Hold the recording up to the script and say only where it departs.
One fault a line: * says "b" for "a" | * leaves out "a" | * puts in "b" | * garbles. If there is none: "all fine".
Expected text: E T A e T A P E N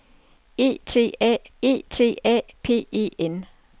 all fine